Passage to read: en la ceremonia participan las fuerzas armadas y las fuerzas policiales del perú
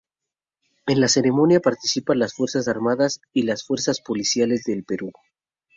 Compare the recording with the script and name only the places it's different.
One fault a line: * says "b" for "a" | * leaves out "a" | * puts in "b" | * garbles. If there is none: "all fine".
all fine